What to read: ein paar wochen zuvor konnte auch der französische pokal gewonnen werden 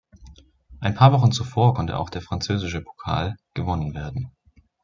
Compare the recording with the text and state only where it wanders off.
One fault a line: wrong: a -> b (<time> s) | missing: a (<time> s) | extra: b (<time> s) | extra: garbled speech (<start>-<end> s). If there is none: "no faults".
no faults